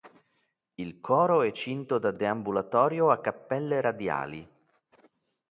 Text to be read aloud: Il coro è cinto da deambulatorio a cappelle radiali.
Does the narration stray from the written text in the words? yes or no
no